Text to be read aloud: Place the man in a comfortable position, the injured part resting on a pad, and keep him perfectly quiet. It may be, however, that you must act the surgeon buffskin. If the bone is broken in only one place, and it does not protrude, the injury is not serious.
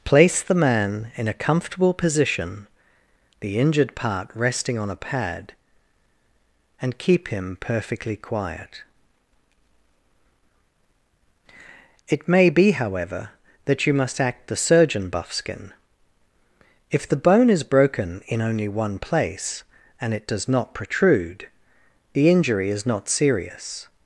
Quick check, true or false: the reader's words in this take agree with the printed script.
true